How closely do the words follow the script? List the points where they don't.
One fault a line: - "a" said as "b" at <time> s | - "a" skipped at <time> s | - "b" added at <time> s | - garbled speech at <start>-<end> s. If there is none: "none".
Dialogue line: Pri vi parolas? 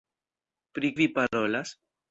none